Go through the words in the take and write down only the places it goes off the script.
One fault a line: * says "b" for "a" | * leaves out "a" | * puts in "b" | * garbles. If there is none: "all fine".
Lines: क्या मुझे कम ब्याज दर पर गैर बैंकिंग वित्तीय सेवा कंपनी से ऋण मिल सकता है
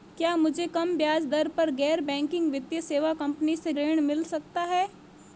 all fine